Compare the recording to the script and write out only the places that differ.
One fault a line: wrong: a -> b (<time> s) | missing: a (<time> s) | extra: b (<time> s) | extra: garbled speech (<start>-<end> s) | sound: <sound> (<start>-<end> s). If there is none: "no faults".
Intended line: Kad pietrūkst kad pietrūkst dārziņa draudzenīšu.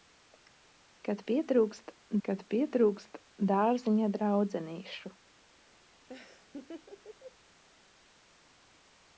sound: laugh (6.1-7.4 s)